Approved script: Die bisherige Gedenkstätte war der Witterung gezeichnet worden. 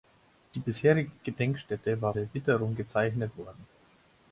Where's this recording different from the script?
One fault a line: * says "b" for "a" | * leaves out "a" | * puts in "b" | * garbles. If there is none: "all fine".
all fine